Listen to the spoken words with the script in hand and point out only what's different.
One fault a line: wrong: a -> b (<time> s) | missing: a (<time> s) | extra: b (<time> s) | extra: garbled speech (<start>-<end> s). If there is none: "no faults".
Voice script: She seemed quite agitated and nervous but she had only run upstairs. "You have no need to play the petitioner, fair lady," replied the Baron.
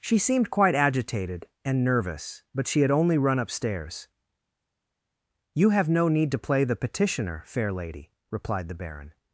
no faults